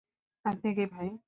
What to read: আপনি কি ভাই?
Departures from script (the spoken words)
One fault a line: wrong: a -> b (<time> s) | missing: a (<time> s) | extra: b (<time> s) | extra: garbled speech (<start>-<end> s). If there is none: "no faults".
no faults